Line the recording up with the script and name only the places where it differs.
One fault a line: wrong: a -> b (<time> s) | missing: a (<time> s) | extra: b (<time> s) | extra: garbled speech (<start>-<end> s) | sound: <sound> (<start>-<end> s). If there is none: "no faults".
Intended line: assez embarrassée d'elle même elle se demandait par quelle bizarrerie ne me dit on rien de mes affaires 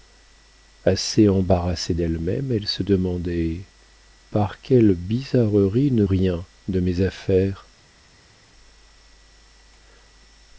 missing: me dit on (6.1 s)